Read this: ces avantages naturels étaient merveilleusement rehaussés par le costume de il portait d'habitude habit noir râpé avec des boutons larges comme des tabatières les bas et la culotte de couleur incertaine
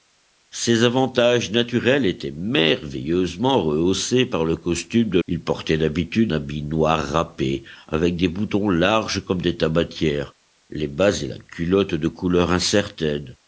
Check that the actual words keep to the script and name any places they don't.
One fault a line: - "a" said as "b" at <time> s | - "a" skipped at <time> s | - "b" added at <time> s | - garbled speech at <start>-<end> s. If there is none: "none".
none